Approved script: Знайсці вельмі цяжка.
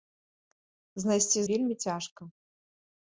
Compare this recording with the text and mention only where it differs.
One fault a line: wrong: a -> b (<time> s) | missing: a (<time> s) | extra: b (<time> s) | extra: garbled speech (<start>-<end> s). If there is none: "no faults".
no faults